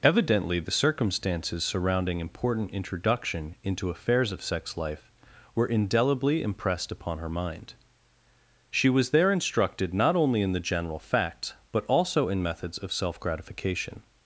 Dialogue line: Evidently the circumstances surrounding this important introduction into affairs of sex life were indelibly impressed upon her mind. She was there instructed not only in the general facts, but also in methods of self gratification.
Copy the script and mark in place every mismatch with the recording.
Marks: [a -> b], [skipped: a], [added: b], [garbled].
Evidently the circumstances surrounding [skipped: this] important introduction into affairs of sex life were indelibly impressed upon her mind. She was there instructed not only in the general facts, but also in methods of self gratification.